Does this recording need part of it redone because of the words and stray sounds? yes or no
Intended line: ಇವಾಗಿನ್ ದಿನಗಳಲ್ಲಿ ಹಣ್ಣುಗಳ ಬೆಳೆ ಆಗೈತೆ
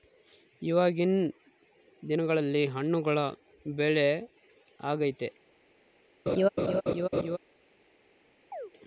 yes